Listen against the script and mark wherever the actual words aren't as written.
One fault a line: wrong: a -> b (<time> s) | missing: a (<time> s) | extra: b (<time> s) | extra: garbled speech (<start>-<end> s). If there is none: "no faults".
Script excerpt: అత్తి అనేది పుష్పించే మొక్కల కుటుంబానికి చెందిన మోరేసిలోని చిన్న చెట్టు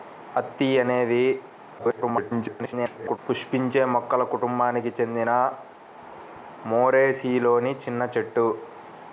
extra: garbled speech (1.8-3.2 s)